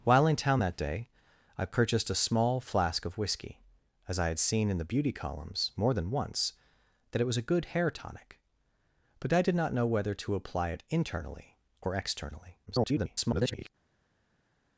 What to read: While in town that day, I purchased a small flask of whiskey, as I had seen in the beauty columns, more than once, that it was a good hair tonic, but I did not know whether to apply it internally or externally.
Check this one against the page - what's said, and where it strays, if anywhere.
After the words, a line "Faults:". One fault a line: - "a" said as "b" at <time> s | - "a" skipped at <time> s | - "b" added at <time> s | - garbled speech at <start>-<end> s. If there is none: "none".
While in town that day, I purchased a small flask of whiskey, as I had seen in the beauty columns, more than once, that it was a good hair tonic, but I did not know whether to apply it internally or externally. [garbled]
Faults:
- garbled speech at 12.7-13.7 s